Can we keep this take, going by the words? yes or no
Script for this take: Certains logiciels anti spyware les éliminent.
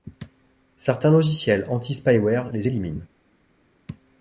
yes